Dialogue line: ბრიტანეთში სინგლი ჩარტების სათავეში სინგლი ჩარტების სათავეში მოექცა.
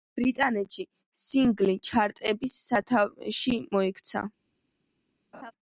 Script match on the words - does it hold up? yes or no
no